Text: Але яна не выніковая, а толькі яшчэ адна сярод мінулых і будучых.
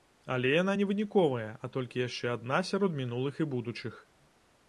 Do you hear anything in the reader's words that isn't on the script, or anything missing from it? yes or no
no